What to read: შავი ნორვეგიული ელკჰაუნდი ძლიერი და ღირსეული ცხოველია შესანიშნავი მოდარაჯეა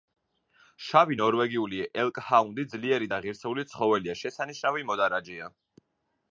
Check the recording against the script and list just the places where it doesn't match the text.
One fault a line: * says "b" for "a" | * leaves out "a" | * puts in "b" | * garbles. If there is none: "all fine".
all fine